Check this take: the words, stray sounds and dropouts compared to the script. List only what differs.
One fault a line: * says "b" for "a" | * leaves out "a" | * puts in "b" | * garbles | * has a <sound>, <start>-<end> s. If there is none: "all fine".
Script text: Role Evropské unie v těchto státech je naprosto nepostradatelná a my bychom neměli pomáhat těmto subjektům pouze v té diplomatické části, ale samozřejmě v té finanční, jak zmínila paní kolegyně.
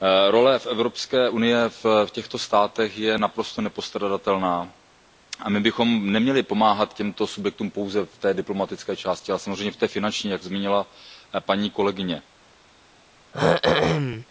* has a throat clearing, 13.3-14.3 s